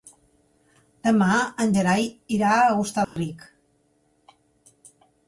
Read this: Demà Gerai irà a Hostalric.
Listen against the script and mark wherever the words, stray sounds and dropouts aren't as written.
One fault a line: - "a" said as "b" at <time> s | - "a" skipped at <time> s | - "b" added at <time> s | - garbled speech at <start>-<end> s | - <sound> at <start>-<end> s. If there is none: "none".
- "en" added at 1.6 s
- dropout at 3.0-3.2 s